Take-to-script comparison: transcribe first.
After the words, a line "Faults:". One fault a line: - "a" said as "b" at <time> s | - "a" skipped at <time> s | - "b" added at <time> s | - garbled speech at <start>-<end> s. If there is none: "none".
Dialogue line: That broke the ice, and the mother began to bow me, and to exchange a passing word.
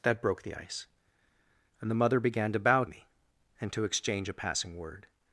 That broke the ice, and the mother began to bow me, and to exchange a passing word.
Faults:
none